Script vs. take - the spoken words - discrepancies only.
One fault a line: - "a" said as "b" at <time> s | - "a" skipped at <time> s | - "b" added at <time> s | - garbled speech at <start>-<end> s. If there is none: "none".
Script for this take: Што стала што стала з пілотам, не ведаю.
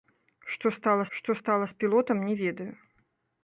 none